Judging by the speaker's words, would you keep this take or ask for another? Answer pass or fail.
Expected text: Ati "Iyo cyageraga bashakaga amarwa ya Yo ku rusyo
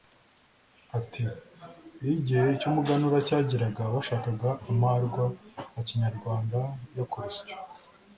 fail